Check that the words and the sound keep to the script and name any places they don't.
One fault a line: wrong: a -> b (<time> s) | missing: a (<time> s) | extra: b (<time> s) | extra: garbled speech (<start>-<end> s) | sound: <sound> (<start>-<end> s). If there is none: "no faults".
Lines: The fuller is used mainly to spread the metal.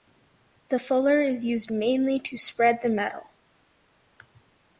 no faults